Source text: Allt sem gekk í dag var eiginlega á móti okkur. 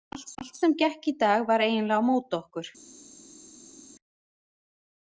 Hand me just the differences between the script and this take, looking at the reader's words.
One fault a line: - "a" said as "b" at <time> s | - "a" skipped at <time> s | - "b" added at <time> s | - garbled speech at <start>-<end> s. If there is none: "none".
- "allt" added at 0.4 s